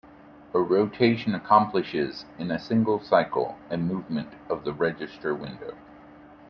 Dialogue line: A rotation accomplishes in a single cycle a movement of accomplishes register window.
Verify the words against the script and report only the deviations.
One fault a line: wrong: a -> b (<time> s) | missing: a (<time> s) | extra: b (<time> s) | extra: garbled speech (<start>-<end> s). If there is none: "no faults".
wrong: accomplishes -> the (4.6 s)